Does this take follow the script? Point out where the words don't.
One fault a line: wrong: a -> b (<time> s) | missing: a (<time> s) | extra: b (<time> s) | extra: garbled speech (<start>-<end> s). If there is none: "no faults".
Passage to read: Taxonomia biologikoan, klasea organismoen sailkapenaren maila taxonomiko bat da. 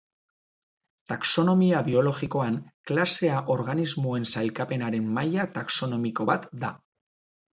no faults